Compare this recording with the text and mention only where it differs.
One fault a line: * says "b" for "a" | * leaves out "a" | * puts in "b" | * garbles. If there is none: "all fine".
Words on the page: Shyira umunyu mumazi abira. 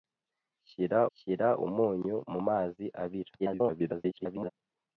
* puts in "shyira"
* garbles